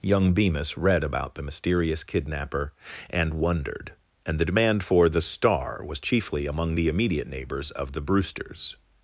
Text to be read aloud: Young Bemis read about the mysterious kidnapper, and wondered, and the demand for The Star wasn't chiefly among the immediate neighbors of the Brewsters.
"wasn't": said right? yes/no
no